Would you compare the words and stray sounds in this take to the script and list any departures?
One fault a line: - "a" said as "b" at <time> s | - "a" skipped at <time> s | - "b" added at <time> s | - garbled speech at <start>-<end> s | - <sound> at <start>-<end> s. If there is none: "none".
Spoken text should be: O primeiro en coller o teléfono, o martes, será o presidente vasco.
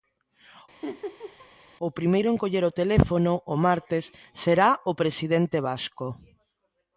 - laugh at 0.8-1.5 s